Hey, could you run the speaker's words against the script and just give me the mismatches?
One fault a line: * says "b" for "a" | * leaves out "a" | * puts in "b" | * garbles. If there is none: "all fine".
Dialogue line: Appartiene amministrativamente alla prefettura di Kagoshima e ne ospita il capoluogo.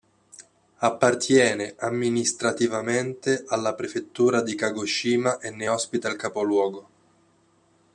all fine